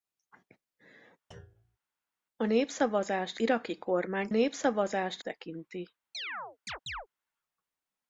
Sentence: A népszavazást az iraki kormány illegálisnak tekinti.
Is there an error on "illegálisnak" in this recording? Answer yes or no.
yes